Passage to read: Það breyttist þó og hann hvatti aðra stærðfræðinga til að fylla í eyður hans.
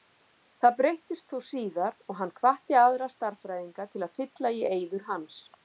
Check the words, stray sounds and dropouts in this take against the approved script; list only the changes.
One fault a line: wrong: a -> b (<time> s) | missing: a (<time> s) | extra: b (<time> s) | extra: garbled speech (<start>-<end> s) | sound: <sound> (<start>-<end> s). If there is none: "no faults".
extra: síðar (1.5 s)